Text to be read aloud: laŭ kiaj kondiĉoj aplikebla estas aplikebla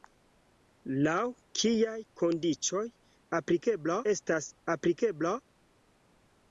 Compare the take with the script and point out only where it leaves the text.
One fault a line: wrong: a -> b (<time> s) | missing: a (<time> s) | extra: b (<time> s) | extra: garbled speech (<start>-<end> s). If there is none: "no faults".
no faults